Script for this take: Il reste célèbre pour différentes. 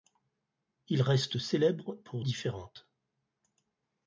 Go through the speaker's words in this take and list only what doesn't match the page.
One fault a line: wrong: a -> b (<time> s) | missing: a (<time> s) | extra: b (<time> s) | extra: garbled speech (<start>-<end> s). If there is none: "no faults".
no faults